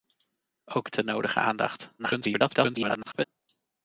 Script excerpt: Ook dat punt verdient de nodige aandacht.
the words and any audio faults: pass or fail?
fail